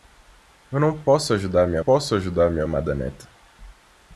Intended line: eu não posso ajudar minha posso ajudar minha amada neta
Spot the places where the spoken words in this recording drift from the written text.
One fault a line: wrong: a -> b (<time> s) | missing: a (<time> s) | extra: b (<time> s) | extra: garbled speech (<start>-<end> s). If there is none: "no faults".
no faults